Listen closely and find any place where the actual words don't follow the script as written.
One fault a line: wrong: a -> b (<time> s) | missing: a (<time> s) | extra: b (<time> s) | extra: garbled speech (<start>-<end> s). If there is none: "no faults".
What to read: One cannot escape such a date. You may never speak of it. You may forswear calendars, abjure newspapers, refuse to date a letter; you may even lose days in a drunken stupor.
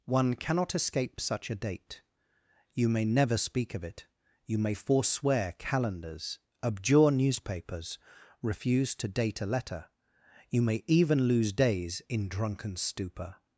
missing: a (12.3 s)